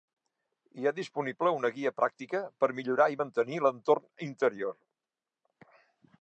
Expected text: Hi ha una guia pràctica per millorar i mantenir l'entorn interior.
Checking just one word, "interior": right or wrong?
right